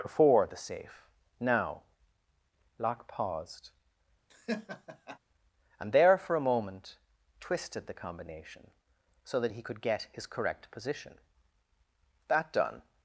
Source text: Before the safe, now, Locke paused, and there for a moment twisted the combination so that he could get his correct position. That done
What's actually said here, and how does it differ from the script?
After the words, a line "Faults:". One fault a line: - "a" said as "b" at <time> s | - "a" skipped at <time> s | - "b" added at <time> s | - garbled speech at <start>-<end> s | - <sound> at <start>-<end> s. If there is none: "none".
Before the safe, now, Locke paused, and there for a moment twisted the combination so that he could get his correct position. That done
Faults:
- laugh at 4.3-5.2 s